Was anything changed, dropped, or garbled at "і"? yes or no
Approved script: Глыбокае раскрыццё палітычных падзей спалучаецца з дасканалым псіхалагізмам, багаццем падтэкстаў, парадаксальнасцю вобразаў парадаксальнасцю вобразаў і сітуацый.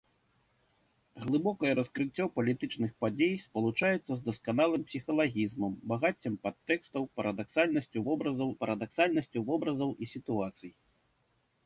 no